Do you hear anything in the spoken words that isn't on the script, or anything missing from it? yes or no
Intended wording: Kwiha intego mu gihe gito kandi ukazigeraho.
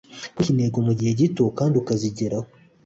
no